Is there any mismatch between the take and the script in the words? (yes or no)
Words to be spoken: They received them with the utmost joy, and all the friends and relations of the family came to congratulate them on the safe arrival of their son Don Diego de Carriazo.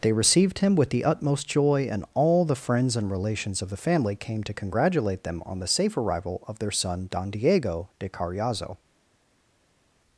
yes